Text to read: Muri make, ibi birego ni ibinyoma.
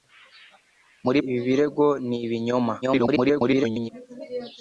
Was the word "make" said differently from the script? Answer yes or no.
yes